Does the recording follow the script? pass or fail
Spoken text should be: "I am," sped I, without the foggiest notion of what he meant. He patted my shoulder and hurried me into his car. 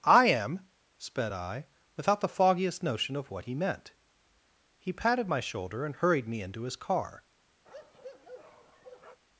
pass